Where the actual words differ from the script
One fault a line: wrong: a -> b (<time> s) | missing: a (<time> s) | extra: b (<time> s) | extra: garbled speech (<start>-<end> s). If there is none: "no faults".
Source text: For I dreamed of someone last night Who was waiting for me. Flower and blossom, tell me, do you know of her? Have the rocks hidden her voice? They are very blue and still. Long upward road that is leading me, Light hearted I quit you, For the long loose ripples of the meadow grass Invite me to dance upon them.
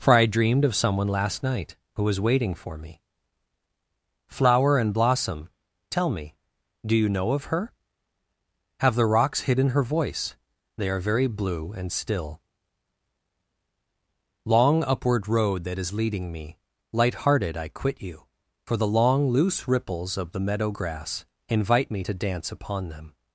no faults